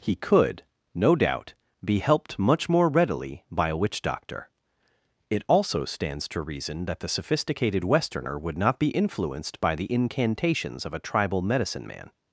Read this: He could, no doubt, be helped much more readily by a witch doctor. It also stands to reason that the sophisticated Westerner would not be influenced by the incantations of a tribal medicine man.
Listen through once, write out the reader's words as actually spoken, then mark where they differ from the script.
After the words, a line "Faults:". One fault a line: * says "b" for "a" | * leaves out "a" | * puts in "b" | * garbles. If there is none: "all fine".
He could, no doubt, be helped much more readily by a witch doctor. It also stands to reason that the sophisticated Westerner would not be influenced by the incantations of a tribal medicine man.
Faults:
all fine